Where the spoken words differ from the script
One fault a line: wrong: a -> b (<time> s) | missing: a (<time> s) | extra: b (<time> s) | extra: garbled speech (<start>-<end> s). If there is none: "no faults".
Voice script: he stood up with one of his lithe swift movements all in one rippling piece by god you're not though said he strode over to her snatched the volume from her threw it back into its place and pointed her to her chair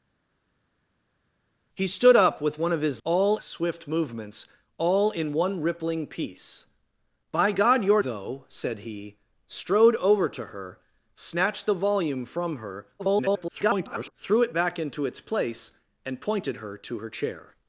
wrong: lithe -> all (3.0 s)
missing: not (8.0 s)
extra: garbled speech (13.0-14.1 s)